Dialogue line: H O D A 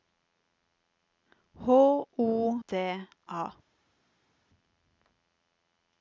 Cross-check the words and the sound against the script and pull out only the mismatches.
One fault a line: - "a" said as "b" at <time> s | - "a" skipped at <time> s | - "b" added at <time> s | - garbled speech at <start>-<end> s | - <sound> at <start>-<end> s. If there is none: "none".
none